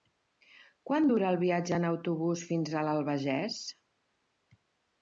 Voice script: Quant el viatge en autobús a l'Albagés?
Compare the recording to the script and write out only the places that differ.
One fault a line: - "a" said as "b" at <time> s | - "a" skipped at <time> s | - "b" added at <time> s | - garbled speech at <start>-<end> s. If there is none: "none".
- "dura" added at 1.1 s
- "fins" added at 2.5 s